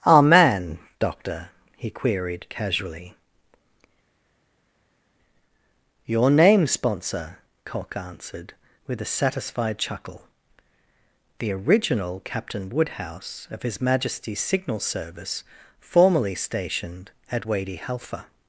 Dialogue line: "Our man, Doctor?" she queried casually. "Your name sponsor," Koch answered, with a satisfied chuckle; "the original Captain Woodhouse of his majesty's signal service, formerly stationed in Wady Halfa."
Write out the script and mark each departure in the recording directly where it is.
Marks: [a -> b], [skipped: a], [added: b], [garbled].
"Our man, Doctor?" [she -> he] queried casually. "Your name sponsor," Koch answered, with a satisfied chuckle; "the original Captain Woodhouse of his majesty's signal service, formerly stationed [in -> at] Wady Halfa."